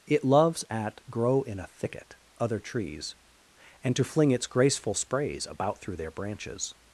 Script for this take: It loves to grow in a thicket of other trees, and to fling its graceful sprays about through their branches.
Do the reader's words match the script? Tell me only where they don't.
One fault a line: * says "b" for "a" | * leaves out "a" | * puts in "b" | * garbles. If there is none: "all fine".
* says "at" for "to"
* leaves out "of"